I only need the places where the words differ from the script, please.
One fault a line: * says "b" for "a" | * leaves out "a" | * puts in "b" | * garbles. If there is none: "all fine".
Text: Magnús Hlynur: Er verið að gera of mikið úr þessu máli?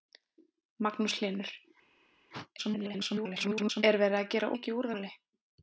* garbles
* leaves out "of"
* leaves out "þessu"